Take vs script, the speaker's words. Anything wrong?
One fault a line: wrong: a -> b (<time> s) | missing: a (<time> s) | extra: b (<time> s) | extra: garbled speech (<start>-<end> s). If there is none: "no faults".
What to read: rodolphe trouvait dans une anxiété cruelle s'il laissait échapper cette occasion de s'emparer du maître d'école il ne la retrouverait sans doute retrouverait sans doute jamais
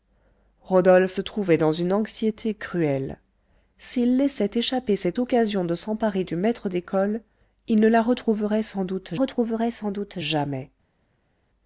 no faults